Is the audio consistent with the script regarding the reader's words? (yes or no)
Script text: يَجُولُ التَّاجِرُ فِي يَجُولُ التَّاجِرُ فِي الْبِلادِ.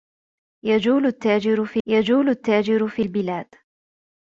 yes